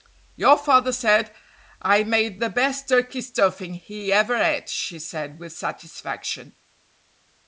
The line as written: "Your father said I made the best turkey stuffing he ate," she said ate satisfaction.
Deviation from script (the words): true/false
true